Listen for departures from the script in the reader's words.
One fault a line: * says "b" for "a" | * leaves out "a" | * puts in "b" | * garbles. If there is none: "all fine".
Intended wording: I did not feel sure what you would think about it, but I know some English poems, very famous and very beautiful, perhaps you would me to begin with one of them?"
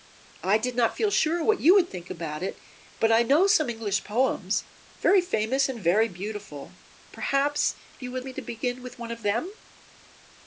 all fine